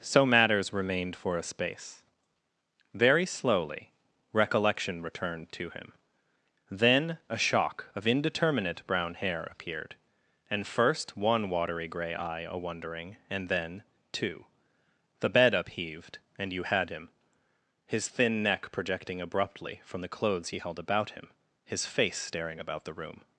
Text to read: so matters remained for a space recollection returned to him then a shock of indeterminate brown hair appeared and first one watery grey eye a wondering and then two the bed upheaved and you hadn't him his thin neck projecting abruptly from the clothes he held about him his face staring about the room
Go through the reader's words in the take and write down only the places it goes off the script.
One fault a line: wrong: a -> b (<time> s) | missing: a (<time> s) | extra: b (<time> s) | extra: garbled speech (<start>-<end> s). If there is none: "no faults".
extra: very slowly (2.9 s)
wrong: hadn't -> had (16.6 s)